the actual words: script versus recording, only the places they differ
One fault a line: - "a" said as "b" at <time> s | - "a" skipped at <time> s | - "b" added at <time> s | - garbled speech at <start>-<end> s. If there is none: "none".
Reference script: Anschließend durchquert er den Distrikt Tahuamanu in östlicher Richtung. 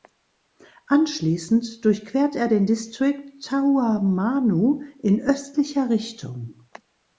none